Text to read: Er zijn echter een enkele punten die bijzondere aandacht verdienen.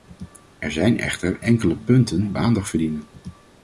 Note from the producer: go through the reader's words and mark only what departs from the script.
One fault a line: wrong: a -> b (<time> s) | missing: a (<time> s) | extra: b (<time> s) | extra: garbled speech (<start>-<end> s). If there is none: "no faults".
missing: een (1.4 s)
missing: die bijzondere (2.4 s)